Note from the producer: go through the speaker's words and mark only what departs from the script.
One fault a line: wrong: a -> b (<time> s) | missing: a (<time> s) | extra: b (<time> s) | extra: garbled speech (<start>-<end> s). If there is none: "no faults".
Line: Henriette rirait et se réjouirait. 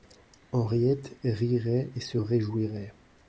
no faults